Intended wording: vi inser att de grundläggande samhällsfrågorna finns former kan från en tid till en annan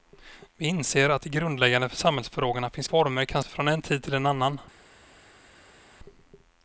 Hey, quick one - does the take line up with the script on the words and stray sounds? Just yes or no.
yes